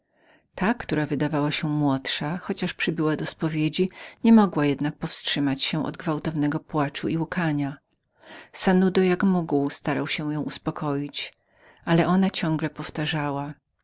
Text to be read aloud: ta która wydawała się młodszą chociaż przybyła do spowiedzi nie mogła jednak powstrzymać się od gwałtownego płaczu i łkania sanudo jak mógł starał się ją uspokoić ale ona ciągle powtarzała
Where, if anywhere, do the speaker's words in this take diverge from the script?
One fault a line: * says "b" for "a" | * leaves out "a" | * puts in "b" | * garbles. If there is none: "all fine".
all fine